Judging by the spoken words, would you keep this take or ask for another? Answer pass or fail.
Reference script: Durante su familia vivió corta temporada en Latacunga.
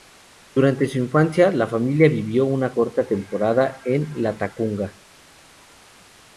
fail